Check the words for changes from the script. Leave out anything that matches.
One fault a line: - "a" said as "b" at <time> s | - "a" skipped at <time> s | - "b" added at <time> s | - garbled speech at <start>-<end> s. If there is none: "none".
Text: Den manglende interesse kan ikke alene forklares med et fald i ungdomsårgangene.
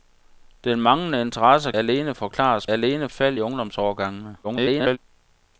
- "kan ikke" skipped at 1.7 s
- "med" said as "alene" at 2.7 s
- garbled speech at 4.4-5.0 s